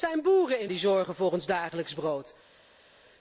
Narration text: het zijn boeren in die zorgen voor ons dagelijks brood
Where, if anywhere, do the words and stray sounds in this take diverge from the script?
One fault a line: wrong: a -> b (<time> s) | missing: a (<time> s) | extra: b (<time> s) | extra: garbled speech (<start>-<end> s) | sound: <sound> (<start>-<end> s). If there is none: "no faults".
no faults